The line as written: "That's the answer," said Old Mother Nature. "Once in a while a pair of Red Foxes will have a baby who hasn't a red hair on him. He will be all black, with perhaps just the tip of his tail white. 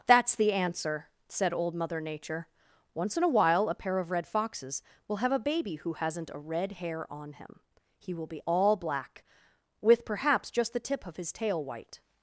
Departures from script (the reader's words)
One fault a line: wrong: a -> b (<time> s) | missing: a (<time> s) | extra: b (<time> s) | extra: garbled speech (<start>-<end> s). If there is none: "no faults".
no faults